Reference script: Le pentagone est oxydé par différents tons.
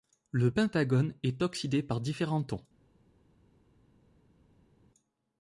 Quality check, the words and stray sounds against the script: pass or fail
pass